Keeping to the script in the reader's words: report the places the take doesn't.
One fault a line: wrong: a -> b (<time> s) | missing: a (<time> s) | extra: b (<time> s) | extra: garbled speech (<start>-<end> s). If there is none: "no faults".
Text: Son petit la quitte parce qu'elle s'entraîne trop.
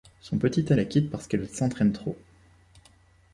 no faults